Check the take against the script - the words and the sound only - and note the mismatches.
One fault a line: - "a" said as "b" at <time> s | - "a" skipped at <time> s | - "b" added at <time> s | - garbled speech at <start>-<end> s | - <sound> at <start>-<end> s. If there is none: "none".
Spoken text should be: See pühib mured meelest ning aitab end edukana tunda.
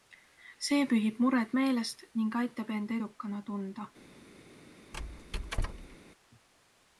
- squeak at 4.9-6.0 s